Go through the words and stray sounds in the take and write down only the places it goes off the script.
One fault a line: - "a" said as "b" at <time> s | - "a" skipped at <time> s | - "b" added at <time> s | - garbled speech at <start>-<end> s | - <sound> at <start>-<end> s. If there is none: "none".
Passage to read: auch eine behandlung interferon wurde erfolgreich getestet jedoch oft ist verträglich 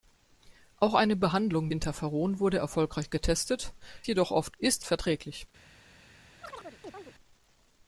- chirp at 6.4-7.1 s